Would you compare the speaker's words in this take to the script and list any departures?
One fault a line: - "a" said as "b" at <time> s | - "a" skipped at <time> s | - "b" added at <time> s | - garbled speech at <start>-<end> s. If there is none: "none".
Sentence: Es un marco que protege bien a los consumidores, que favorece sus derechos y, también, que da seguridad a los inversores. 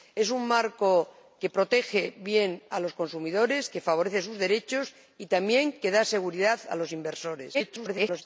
- garbled speech at 7.5-8.2 s